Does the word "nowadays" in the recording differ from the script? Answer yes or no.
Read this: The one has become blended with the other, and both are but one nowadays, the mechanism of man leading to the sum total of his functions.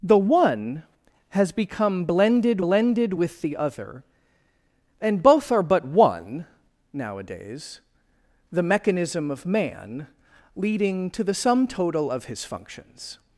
no